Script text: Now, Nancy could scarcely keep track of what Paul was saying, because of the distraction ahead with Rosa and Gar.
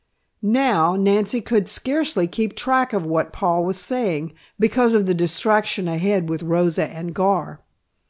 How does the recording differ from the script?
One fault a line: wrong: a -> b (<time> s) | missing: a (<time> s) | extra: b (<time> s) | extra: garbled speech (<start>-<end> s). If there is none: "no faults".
no faults